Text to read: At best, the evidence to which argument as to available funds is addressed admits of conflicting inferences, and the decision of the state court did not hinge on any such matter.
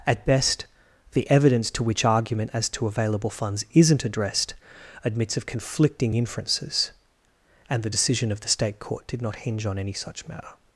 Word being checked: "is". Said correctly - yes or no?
no